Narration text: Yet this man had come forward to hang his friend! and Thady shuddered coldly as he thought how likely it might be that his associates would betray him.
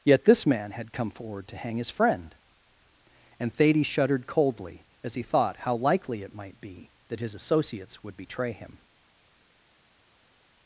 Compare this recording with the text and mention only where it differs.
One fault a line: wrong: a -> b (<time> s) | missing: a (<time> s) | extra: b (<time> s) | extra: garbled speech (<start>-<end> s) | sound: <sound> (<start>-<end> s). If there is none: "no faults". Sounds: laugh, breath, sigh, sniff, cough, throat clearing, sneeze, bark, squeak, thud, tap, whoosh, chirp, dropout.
no faults